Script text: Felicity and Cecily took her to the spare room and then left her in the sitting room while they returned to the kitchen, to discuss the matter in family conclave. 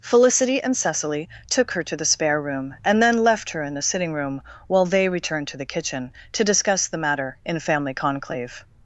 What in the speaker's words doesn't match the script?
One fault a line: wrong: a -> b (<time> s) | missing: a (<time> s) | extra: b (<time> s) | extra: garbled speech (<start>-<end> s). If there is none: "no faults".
no faults